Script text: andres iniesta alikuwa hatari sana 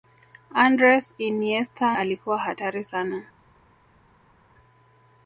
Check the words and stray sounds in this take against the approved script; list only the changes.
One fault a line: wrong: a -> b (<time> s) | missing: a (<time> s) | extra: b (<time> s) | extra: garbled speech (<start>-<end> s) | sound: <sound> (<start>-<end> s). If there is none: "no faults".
no faults